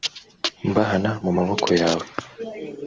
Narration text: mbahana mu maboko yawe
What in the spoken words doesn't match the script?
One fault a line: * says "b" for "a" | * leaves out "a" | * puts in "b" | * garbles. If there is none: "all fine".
all fine